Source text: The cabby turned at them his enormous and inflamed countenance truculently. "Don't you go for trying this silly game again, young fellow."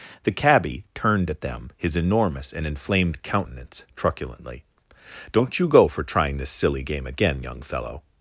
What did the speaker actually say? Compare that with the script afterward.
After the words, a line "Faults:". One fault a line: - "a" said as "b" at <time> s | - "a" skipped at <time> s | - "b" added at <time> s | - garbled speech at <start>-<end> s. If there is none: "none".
The cabby turned at them his enormous and inflamed countenance truculently. "Don't you go for trying this silly game again, young fellow."
Faults:
none